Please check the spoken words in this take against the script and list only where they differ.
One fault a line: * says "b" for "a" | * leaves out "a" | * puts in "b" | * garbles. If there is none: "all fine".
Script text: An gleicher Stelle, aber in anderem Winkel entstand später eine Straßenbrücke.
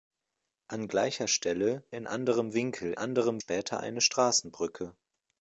* leaves out "aber"
* says "anderem" for "entstand"